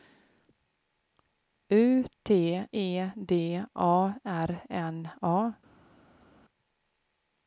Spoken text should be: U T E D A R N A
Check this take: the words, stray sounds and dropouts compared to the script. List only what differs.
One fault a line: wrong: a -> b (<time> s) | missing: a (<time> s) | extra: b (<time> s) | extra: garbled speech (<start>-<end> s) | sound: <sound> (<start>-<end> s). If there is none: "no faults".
no faults